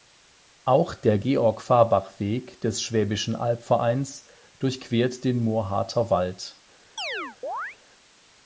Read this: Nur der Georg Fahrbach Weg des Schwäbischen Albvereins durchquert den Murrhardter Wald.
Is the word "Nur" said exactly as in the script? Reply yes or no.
no